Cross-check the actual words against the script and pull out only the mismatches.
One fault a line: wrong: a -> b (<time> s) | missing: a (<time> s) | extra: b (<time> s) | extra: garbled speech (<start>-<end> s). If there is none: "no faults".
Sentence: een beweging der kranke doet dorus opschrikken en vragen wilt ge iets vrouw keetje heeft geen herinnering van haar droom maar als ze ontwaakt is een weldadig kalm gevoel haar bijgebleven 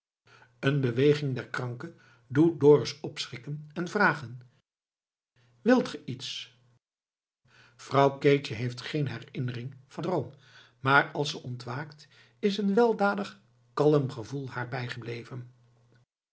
missing: haar (10.0 s)